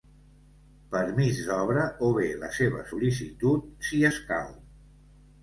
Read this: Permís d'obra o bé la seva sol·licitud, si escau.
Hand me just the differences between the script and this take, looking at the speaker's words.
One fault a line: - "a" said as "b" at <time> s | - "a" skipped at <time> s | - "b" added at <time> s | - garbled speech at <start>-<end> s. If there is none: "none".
none